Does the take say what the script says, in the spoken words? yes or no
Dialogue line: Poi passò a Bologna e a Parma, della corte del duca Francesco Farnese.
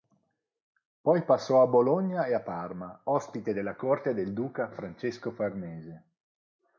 no